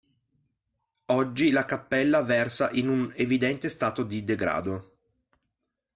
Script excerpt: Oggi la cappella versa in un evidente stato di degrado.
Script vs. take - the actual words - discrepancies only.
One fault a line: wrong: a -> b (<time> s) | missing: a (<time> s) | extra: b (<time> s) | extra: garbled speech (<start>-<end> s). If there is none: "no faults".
no faults